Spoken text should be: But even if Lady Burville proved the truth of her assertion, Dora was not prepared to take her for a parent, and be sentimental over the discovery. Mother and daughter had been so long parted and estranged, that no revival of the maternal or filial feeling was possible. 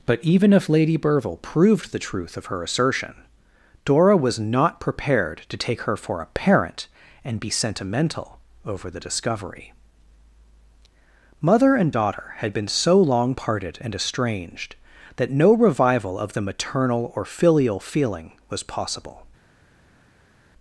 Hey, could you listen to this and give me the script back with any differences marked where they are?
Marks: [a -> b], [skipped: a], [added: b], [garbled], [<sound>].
But even if Lady Burville proved the truth of her assertion, Dora was not prepared to take her for a parent, and be sentimental over the discovery. Mother and daughter had been so long parted and estranged, that no revival of the maternal or filial feeling was possible.